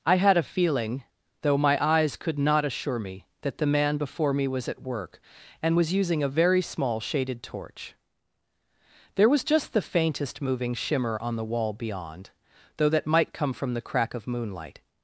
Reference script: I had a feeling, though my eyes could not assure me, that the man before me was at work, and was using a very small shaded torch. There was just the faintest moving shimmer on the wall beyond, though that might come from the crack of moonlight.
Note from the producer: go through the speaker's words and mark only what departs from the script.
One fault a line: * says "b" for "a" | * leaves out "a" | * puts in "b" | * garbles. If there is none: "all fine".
all fine